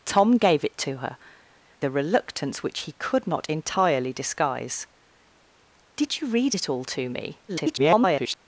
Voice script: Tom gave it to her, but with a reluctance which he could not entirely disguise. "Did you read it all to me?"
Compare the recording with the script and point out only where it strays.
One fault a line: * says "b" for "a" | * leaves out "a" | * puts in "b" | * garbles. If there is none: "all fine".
* leaves out "but with"
* garbles